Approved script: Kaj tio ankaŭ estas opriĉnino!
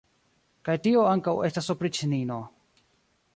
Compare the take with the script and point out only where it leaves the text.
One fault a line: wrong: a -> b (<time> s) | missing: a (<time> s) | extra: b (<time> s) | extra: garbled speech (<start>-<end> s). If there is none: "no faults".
no faults